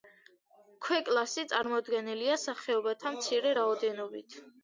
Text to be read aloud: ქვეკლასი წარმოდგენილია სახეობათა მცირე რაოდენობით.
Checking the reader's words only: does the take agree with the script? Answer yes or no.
yes